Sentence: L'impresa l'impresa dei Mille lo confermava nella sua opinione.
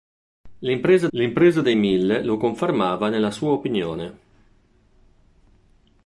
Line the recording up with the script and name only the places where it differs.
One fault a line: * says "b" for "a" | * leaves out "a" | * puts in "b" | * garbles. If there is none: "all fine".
all fine